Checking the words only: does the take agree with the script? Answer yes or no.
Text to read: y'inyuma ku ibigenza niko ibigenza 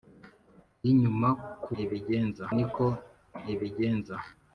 yes